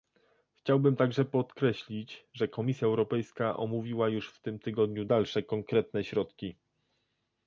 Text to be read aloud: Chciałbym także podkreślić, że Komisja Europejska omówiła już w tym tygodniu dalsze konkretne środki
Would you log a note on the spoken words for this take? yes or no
no